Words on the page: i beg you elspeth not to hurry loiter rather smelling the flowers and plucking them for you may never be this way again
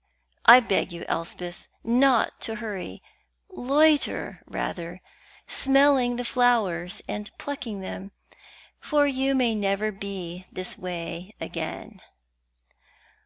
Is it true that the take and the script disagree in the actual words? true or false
false